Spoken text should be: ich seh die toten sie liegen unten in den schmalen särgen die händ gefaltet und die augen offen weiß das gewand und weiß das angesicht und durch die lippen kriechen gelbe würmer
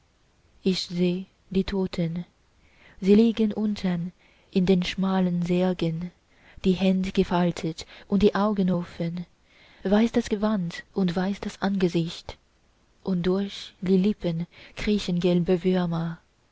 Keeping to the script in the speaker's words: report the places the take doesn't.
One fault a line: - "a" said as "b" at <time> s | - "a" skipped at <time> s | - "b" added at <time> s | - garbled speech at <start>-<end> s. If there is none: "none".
none